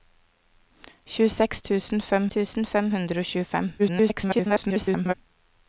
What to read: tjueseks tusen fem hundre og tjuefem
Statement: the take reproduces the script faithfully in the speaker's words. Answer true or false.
false